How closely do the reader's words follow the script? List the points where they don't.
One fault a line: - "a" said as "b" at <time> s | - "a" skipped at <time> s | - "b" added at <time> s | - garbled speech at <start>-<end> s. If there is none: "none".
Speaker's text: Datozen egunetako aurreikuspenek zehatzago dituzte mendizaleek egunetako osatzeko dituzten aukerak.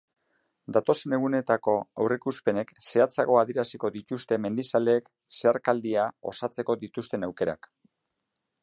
- "adieraziko" added at 3.4 s
- "egunetako" said as "zeharkaldia" at 5.4 s